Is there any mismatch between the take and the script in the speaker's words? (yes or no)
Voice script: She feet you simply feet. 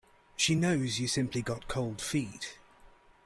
yes